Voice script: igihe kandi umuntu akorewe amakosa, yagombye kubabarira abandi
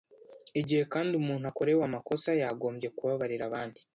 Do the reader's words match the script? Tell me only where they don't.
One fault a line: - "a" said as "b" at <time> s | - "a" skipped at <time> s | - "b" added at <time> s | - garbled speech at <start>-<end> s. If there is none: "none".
none